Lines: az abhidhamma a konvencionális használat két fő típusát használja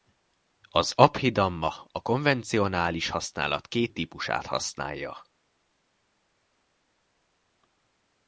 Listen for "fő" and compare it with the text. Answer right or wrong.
wrong